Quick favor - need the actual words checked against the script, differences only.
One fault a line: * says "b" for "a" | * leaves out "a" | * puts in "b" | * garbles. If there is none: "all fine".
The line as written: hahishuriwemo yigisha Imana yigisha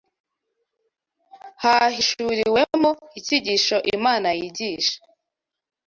* says "icyigisho" for "yigisha"